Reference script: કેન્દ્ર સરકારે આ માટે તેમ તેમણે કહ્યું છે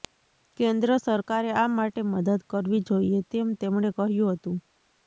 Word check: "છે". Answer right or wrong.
wrong